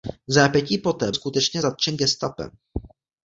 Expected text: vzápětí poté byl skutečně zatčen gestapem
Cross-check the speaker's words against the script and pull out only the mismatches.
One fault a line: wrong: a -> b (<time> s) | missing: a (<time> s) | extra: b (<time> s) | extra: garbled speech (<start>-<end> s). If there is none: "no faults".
missing: byl (1.1 s)